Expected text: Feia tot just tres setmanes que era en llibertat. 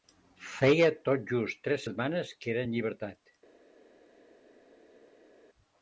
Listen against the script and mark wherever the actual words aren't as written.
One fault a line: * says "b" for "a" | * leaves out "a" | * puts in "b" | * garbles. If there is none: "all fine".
all fine